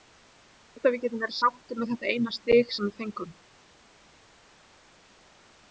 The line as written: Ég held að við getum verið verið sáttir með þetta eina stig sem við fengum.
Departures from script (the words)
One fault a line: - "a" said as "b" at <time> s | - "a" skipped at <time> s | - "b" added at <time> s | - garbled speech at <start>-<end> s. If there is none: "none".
- "verið" skipped at 1.4 s